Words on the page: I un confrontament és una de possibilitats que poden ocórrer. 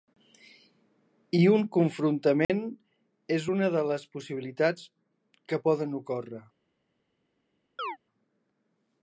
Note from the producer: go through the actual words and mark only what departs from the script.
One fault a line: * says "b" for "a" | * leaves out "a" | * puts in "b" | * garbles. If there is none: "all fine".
* puts in "les"